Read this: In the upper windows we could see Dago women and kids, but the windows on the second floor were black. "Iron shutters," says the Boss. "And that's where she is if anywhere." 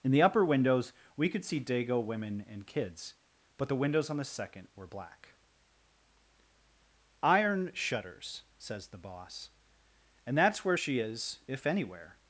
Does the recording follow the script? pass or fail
fail